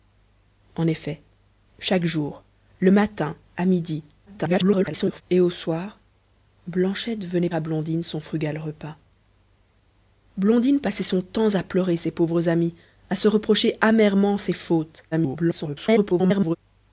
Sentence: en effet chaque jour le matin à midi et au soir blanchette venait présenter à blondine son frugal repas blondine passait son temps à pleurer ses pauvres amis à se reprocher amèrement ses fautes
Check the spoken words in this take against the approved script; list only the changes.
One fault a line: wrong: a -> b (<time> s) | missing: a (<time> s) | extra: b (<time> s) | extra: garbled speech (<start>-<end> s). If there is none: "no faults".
extra: garbled speech (4.3-5.2 s)
missing: présenter (7.5 s)
extra: garbled speech (15.1-16.6 s)